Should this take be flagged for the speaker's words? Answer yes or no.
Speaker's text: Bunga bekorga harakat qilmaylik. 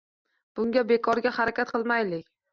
no